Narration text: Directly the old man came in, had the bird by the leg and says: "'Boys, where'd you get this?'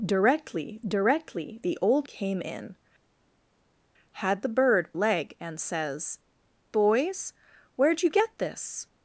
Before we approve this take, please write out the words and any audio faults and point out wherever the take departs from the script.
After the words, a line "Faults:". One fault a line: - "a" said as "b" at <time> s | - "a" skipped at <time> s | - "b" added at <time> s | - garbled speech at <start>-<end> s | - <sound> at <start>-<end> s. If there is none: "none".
Directly directly the old came in, had the bird leg and says: "'Boys, where'd you get this?'
Faults:
- "directly" added at 0.9 s
- "man" skipped at 2.1 s
- "by the" skipped at 4.9 s